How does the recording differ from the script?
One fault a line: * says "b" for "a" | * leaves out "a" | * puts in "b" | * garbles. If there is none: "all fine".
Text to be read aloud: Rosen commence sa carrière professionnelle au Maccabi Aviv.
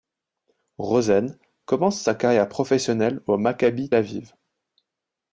all fine